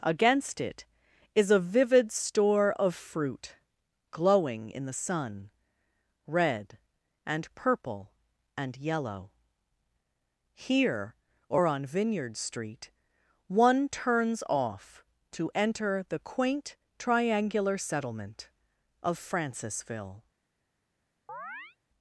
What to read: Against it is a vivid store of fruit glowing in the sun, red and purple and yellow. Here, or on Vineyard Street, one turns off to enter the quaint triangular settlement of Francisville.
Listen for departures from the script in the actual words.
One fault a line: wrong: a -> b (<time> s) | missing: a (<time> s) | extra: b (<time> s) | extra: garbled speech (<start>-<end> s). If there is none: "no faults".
no faults